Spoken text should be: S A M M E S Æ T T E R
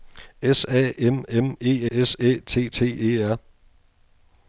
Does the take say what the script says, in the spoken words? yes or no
yes